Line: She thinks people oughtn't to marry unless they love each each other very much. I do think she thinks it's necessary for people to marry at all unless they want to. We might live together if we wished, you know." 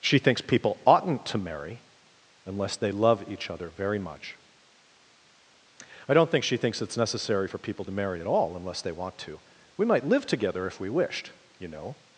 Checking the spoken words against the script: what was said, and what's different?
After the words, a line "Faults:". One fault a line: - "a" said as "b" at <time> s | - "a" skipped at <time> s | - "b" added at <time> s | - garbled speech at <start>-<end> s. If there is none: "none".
She thinks people oughtn't to marry unless they love each other very much. I don't think she thinks it's necessary for people to marry at all unless they want to. We might live together if we wished, you know."
Faults:
- "each" skipped at 3.5 s
- "do" said as "don't" at 6.1 s